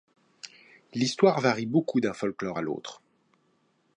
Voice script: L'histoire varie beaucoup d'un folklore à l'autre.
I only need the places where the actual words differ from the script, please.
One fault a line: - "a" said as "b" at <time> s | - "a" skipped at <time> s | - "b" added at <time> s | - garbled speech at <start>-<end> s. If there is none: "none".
none